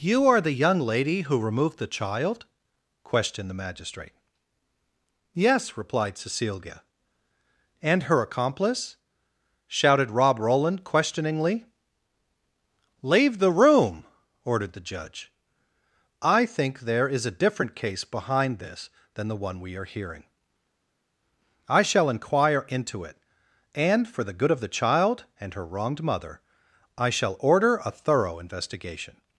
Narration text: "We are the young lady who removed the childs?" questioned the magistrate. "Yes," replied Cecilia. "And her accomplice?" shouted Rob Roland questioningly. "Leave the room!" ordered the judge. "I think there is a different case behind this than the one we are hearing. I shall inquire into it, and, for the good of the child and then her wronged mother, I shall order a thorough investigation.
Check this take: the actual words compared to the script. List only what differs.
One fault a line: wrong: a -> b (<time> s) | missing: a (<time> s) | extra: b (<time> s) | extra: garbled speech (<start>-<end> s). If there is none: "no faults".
wrong: We -> You (0.0 s)
wrong: childs -> child (1.9 s)
missing: then (25.5 s)